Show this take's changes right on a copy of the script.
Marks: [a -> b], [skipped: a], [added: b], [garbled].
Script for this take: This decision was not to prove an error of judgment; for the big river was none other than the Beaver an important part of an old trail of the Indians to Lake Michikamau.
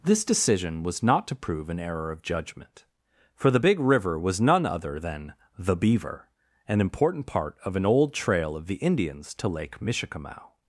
This decision was not to prove an error of judgment; for the big river was none other than the Beaver an important part of an old trail of the Indians to Lake Michikamau.